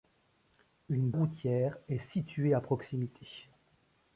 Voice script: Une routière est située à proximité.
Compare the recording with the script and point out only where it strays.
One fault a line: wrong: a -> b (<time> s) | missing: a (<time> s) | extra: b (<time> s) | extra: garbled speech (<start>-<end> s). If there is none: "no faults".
no faults